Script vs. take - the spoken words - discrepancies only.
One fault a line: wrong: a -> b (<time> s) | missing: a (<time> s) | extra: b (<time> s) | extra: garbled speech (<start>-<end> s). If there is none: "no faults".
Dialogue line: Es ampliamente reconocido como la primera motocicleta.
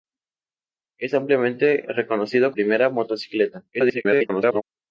missing: como la (2.5 s)
extra: garbled speech (3.7-4.6 s)